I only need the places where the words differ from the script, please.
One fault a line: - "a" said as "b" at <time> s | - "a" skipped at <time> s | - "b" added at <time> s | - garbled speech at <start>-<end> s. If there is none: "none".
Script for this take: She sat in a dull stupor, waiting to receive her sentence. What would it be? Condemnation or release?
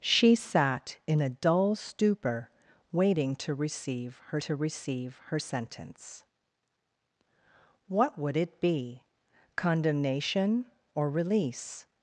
- "to receive her" added at 4.4 s